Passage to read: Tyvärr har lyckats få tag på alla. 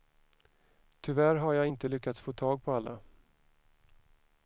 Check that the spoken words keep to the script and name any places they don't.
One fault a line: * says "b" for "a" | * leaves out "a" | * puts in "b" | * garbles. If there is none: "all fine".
* puts in "jag inte"